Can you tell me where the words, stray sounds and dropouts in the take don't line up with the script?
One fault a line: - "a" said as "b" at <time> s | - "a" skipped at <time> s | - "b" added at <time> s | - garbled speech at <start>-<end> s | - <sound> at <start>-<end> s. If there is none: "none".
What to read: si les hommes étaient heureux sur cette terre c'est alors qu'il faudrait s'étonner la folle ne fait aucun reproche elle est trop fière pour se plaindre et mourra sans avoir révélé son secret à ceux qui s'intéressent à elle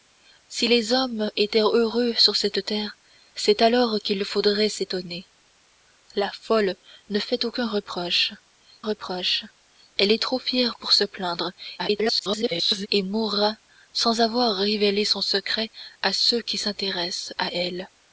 - "reproche" added at 8.8 s
- garbled speech at 11.8-12.9 s